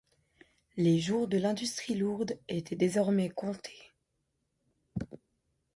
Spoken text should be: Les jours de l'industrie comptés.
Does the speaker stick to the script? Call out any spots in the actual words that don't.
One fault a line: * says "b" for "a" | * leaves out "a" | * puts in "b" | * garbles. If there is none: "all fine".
* puts in "lourde étaient désormais"